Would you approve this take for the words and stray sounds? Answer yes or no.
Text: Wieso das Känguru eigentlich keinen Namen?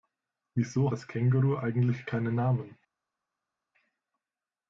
yes